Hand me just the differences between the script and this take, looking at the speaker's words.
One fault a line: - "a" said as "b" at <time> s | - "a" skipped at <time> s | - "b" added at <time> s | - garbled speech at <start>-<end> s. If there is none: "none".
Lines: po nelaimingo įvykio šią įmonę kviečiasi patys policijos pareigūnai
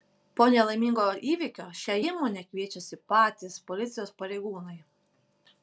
none